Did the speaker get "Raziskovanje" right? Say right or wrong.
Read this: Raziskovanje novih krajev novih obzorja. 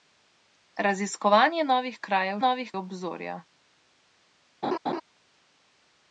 right